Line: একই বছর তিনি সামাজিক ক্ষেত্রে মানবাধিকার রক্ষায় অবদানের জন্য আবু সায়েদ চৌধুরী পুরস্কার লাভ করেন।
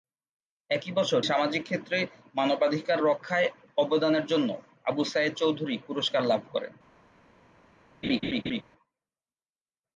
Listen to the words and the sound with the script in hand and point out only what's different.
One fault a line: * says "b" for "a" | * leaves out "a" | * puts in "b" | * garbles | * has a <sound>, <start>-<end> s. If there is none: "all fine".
* leaves out "তিনি"
* has a laugh, 8.0-8.6 s